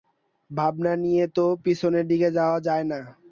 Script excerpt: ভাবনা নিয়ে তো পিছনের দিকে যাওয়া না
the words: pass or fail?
fail